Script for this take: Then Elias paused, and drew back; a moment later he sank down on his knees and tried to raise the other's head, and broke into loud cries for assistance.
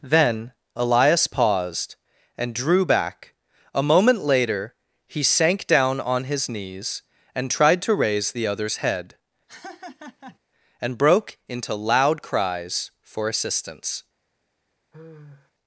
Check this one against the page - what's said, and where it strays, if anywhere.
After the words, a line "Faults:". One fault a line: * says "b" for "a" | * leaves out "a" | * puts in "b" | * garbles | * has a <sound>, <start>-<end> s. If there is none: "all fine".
Then Elias paused, and drew back; a moment later he sank down on his knees and tried to raise the other's head, and broke into loud cries for assistance.
Faults:
* has a laugh, 9.5-10.4 s
* has a sigh, 14.9-15.5 s